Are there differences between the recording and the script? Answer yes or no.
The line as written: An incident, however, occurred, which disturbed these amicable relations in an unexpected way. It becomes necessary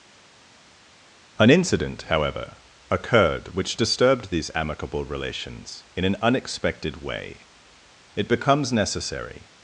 no